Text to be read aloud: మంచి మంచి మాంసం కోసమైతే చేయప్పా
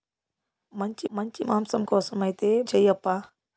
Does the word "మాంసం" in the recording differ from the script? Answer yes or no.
no